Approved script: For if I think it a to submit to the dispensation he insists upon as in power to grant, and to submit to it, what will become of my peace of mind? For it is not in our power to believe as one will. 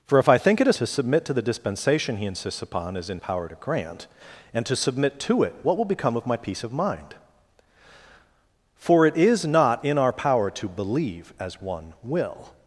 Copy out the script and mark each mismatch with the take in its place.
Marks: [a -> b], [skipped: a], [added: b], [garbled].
For if I think it a to submit to the dispensation he insists upon as in power to grant, and to submit to it, what will become of my peace of mind? For it is not in our power to believe as one will.